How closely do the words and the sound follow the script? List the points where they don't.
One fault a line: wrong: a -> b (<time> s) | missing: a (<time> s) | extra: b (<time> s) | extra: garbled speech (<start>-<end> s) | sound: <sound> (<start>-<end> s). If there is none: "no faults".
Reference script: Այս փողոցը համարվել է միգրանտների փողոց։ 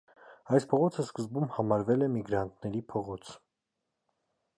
extra: սկզբում (1.0 s)